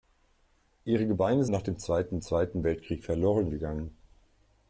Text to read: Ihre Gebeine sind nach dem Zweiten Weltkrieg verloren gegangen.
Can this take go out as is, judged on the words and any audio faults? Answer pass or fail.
fail